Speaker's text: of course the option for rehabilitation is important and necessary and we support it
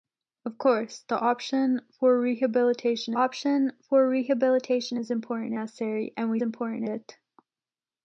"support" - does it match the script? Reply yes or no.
no